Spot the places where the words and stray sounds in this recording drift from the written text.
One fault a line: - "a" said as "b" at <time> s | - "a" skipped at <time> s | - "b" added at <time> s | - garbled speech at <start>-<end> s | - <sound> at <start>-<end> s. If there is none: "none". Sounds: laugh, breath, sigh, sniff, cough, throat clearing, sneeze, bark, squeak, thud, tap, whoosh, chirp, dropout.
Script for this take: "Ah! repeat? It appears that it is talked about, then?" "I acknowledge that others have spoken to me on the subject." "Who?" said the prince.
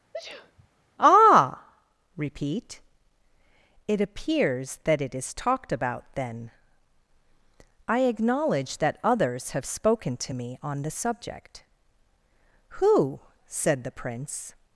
- sneeze at 0.1-0.7 s